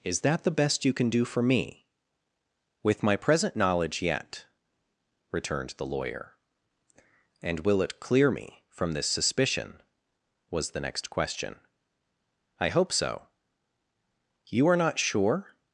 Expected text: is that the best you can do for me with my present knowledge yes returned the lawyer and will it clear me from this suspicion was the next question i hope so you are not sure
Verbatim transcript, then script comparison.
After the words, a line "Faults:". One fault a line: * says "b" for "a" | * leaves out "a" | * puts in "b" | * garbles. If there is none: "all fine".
is that the best you can do for me with my present knowledge yet returned the lawyer and will it clear me from this suspicion was the next question i hope so you are not sure
Faults:
* says "yet" for "yes"